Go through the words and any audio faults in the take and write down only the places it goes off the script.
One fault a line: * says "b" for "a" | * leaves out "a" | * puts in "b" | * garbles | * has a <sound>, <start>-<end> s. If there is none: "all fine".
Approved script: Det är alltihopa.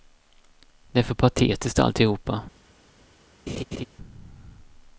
* puts in "för patetiskt"
* has a laugh, 3.5-3.9 s